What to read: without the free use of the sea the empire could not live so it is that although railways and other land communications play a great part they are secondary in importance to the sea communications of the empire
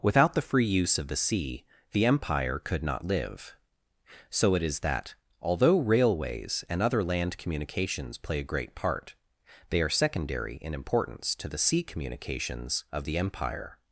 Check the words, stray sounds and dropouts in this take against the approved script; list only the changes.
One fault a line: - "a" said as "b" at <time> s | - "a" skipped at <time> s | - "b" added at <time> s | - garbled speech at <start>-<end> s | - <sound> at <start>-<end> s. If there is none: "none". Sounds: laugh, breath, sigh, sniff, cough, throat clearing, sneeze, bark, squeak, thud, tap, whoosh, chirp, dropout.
none